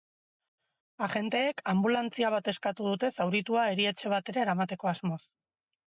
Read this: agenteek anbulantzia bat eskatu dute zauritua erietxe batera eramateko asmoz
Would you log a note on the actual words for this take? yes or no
no